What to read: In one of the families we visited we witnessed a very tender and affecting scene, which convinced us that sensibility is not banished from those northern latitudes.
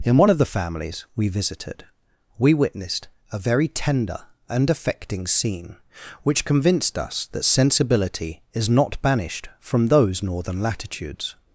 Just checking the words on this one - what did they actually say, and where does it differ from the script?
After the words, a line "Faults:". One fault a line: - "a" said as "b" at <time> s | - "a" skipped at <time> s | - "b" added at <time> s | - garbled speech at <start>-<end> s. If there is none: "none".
In one of the families we visited we witnessed a very tender and affecting scene, which convinced us that sensibility is not banished from those northern latitudes.
Faults:
none